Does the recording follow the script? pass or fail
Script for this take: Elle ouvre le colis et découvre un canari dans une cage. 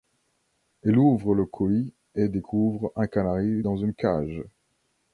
pass